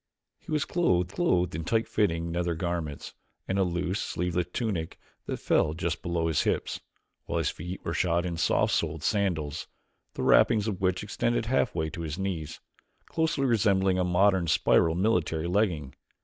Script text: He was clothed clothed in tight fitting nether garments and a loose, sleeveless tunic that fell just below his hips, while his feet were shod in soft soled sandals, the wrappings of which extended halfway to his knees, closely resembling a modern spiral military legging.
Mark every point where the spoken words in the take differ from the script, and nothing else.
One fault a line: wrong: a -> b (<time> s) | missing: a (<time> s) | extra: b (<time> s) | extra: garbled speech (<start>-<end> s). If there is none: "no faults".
no faults